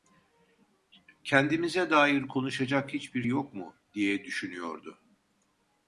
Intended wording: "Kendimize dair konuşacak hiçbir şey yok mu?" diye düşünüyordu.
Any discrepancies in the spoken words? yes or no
yes